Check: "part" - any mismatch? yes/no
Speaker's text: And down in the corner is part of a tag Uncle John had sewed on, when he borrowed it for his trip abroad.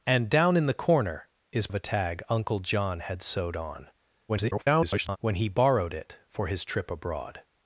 yes